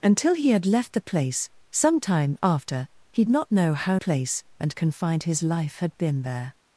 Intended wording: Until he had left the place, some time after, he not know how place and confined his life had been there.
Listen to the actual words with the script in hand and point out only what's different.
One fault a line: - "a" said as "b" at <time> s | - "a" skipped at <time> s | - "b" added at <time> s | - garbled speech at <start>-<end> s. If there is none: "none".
none